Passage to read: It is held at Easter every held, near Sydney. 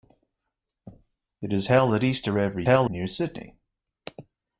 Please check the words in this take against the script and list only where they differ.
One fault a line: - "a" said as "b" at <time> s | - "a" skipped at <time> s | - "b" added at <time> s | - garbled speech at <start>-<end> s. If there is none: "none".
none